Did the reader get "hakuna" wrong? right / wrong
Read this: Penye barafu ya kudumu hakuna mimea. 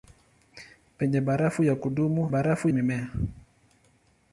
wrong